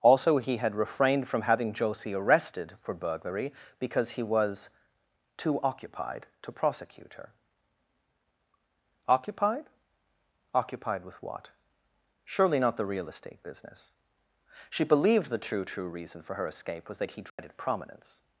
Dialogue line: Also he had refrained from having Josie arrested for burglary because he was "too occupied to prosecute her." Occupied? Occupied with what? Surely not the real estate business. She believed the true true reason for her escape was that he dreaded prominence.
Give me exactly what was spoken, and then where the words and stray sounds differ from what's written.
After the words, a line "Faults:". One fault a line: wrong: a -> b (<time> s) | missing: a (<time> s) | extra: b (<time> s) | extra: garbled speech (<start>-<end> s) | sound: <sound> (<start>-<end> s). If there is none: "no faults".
Also he had refrained from having Josie arrested for burglary because he was "too occupied to prosecute her." Occupied? Occupied with what? Surely not the real estate business. She believed the true true reason for her escape was that he dreaded prominence.
Faults:
sound: dropout (17.3-17.4 s)